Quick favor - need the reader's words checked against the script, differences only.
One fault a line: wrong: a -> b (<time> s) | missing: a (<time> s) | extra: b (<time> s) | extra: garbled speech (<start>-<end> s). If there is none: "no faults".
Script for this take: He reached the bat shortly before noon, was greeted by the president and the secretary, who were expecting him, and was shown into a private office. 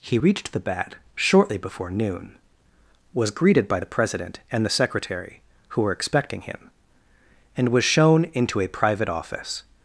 no faults